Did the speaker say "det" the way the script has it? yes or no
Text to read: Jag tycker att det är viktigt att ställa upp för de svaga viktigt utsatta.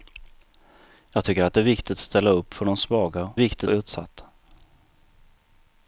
yes